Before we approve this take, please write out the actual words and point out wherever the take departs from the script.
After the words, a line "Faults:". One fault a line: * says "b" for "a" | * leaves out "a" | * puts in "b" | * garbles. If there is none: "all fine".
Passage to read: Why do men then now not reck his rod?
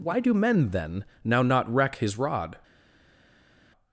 Why do men then now not reck his rod?
Faults:
all fine